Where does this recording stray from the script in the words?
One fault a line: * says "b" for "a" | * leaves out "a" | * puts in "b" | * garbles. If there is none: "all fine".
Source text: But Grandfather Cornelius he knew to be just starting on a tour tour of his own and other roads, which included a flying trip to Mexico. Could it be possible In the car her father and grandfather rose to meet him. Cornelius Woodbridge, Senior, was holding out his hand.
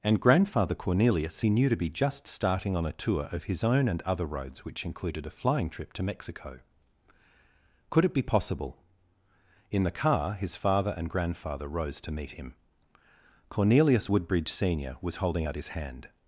* says "And" for "But"
* leaves out "tour"
* says "his" for "her"